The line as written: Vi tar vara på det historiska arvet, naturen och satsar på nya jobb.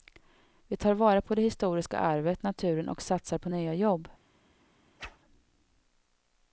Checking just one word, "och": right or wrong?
right